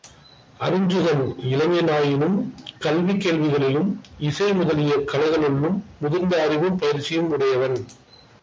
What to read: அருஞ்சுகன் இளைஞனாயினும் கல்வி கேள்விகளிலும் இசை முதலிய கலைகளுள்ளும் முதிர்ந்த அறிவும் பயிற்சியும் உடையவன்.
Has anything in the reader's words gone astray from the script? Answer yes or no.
no